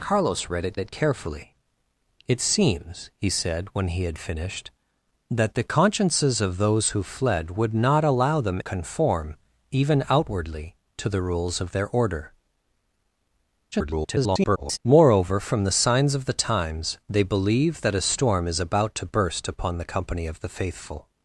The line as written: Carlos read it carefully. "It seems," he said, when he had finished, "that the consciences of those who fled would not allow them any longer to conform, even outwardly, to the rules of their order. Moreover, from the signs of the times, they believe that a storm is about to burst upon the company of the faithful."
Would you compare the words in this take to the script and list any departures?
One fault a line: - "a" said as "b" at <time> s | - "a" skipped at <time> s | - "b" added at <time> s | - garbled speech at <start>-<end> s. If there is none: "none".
- "it" added at 0.8 s
- "any longer to" skipped at 8.6 s
- garbled speech at 13.7-14.8 s